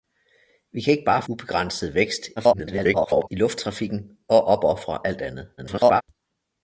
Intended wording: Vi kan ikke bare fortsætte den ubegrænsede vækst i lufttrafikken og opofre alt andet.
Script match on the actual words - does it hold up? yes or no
no